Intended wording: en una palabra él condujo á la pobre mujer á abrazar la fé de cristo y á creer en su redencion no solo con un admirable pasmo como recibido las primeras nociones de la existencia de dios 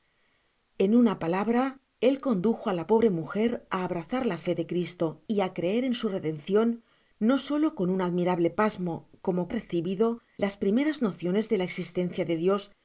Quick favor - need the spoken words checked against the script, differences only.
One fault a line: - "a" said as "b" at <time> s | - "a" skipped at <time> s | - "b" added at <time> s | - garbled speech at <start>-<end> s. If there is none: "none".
none